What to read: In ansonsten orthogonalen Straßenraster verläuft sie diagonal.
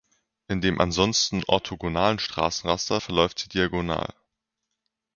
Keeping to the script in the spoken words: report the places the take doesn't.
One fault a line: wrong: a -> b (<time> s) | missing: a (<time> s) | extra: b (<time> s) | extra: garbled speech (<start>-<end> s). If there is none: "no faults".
extra: dem (0.6 s)